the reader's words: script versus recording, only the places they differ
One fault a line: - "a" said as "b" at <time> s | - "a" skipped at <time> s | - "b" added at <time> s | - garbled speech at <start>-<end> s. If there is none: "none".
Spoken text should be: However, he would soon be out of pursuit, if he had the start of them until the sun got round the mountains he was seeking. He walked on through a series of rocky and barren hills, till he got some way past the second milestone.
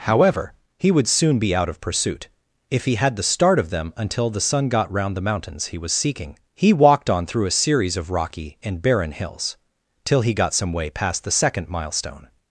none